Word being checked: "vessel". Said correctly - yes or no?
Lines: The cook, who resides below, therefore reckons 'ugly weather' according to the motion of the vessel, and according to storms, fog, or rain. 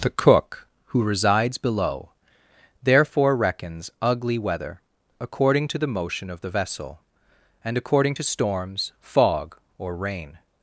yes